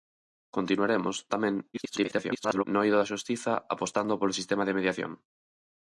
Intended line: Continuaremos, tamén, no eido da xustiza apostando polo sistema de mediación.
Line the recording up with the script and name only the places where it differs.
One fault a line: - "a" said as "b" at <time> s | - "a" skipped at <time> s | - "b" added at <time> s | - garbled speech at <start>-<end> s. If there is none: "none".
- garbled speech at 1.7-2.6 s